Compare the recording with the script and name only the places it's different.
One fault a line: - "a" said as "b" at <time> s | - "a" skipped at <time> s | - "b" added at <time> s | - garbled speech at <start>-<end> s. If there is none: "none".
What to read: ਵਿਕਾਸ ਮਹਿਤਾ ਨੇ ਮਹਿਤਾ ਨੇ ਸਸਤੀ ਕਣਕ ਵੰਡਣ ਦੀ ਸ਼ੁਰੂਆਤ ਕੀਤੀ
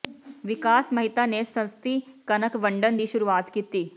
- "ਮਹਿਤਾ ਨੇ" skipped at 1.4 s